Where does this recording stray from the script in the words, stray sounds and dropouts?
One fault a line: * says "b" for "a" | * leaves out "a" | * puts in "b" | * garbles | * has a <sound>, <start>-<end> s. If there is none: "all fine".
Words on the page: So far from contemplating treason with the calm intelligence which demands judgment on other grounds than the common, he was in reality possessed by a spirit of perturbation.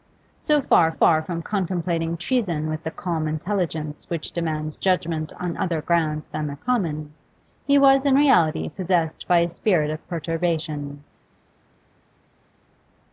* puts in "far"